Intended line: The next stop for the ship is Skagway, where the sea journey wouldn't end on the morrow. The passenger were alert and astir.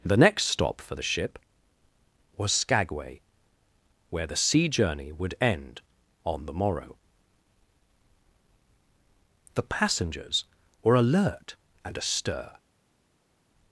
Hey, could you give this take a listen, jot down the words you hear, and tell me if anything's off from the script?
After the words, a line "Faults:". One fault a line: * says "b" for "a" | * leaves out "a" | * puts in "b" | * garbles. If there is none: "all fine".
The next stop for the ship was Skagway, where the sea journey would end on the morrow. The passengers were alert and astir.
Faults:
* says "was" for "is"
* says "would" for "wouldn't"
* says "passengers" for "passenger"